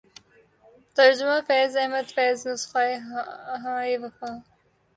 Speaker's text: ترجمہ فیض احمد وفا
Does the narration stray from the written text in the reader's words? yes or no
yes